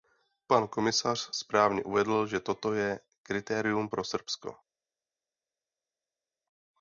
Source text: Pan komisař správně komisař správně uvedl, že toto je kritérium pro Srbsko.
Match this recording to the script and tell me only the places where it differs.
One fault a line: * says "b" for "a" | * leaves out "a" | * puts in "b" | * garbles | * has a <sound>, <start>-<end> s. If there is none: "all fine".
* leaves out "komisař správně"